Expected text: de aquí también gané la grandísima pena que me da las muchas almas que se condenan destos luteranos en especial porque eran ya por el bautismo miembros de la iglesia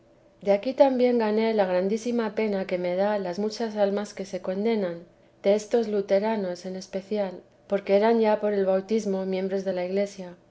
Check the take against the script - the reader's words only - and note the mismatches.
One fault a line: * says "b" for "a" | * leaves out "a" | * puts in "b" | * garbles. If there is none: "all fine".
all fine